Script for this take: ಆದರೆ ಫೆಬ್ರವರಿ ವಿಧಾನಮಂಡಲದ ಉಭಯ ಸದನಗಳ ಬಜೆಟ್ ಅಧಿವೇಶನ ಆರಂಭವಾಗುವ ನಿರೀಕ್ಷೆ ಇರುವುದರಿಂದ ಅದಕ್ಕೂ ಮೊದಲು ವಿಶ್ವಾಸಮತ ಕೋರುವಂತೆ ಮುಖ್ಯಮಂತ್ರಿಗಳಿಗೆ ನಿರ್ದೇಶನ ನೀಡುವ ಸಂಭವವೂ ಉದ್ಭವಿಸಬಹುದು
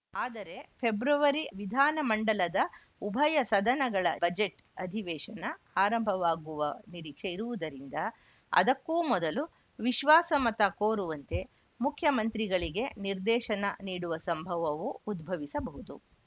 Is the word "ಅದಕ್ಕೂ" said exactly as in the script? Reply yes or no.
yes